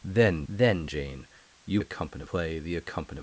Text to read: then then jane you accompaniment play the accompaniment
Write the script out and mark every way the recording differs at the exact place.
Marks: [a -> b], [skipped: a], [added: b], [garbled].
then then jane you accompaniment play the accompaniment